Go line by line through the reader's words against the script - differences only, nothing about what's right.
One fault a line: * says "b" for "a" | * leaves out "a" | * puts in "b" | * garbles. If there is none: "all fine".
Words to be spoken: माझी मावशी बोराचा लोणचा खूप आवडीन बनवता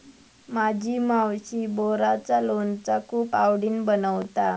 all fine